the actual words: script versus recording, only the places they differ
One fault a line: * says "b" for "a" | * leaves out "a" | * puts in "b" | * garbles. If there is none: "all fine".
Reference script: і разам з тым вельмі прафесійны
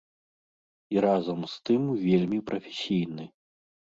all fine